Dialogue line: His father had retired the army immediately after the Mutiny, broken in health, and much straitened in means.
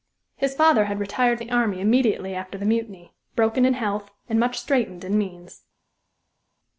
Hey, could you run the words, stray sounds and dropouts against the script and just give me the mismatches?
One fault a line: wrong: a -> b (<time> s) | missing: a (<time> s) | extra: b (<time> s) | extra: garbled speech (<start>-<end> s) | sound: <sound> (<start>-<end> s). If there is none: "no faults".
no faults